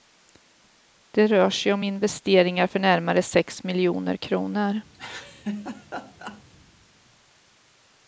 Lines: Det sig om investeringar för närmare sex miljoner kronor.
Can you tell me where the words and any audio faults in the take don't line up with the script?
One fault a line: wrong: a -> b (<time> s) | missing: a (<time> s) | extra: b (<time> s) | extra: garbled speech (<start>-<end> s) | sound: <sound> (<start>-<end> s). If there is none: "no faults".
extra: rör (1.3 s)
sound: laugh (4.9-6.4 s)